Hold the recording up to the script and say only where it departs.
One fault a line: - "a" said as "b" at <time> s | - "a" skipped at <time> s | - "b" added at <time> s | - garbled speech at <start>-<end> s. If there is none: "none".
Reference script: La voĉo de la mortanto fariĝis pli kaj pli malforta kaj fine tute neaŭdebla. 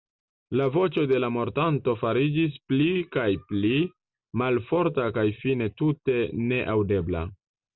none